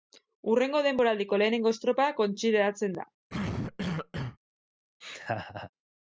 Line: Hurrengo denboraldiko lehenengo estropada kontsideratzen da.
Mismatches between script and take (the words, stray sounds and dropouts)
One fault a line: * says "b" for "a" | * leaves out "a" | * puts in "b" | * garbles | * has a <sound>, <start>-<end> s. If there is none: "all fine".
* has a cough, 3.3-4.4 s
* has a laugh, 5.0-5.7 s